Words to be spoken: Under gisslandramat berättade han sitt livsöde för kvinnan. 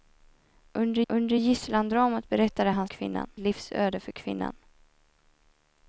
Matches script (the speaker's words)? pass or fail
fail